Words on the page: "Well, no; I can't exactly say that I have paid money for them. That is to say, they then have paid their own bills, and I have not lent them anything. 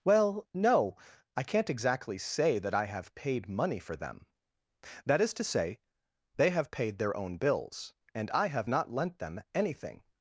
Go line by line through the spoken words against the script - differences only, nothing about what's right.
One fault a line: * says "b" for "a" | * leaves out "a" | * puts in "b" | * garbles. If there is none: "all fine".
* leaves out "then"